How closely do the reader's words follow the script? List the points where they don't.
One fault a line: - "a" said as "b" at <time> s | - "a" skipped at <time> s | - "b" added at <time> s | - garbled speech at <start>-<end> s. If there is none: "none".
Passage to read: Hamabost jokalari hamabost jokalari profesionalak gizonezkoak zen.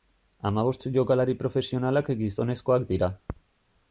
- "hamabost jokalari" skipped at 1.4 s
- "zen" said as "dira" at 2.9 s